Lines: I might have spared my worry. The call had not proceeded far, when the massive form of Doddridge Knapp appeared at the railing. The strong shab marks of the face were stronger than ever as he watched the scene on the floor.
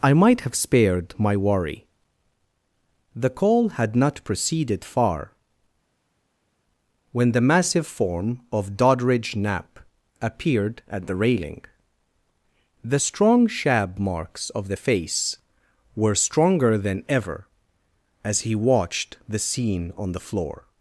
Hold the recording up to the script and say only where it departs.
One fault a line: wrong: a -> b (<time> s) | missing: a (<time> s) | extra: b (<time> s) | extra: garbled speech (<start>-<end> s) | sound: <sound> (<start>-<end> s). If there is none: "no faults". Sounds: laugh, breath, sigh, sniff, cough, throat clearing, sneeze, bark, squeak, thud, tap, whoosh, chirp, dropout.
no faults